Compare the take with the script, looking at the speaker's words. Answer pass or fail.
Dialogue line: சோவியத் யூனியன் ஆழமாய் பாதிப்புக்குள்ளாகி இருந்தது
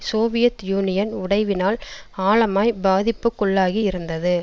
fail